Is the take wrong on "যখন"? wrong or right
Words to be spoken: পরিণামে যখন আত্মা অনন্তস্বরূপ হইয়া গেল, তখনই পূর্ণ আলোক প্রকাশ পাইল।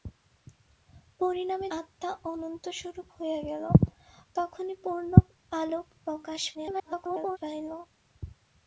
wrong